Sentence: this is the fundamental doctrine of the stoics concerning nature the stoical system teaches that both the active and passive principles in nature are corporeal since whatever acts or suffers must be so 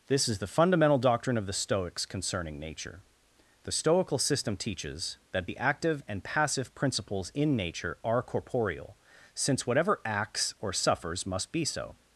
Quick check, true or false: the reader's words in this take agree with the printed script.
false